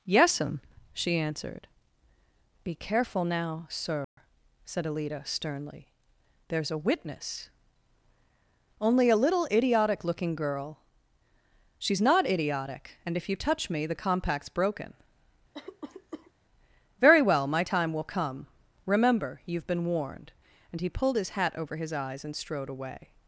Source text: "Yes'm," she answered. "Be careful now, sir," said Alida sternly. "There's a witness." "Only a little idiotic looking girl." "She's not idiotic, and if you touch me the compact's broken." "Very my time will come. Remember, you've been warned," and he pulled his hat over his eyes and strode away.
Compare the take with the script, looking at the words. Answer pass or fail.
fail